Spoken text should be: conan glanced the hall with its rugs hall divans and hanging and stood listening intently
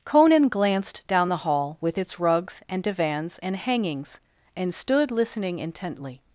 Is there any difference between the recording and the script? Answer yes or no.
yes